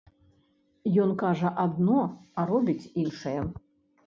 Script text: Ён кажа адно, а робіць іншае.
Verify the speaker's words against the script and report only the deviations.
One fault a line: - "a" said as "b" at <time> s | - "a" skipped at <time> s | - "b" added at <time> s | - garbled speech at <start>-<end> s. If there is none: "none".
none